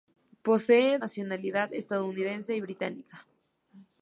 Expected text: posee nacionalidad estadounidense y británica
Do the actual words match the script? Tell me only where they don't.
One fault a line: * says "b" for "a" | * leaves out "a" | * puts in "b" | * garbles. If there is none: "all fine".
all fine